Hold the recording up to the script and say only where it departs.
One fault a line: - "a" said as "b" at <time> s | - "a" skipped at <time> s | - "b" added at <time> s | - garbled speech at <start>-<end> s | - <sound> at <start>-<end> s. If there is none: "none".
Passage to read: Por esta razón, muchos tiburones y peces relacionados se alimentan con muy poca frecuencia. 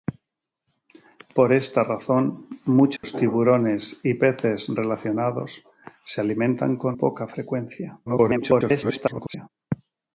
- dropout at 3.0-3.0 s
- "muy" skipped at 7.0 s
- garbled speech at 8.0-9.5 s